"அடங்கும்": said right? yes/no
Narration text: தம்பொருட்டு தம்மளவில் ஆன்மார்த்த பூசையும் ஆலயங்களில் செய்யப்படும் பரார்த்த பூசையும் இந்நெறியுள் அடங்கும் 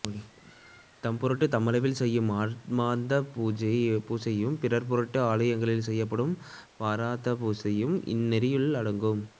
yes